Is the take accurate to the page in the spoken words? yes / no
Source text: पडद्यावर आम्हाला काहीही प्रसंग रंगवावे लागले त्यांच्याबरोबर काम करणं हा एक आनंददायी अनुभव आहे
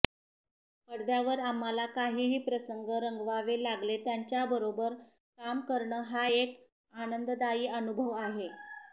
yes